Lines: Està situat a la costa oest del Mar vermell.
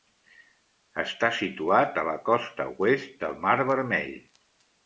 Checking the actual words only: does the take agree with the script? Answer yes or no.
yes